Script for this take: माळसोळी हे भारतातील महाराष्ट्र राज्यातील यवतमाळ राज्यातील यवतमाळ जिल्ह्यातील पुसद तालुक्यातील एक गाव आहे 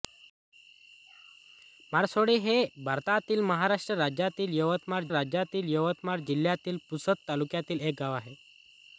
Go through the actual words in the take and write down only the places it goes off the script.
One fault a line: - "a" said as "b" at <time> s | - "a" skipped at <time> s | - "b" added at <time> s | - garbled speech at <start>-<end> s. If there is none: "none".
none